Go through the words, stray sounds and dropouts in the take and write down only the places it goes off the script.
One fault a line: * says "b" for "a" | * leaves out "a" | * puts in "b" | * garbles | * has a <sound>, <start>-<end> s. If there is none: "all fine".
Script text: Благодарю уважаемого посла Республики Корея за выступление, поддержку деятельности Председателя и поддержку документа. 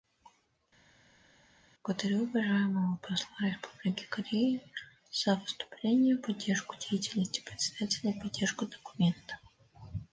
all fine